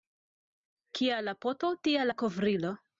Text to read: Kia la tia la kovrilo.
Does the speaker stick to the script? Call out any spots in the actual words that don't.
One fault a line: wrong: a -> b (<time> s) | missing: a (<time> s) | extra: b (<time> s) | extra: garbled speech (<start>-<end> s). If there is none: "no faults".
extra: poto (1.4 s)